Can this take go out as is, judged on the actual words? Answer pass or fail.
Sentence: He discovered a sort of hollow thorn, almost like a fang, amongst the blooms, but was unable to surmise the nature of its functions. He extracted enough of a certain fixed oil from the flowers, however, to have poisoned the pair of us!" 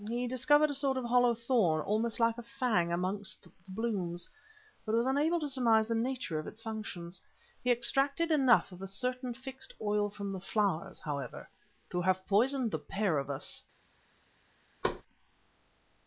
pass